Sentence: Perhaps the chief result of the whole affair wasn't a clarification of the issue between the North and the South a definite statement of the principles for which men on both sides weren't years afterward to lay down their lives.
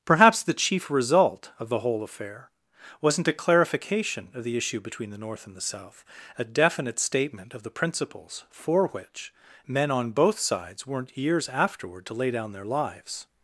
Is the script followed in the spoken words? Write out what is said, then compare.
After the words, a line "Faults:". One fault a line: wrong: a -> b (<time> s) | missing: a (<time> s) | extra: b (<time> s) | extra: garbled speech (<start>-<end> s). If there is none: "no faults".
Perhaps the chief result of the whole affair wasn't a clarification of the issue between the North and the South a definite statement of the principles for which men on both sides weren't years afterward to lay down their lives.
Faults:
no faults